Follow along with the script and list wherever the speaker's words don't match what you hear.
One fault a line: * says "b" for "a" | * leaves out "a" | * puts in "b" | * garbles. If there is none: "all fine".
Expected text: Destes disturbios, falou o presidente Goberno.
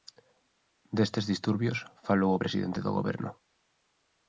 * puts in "do"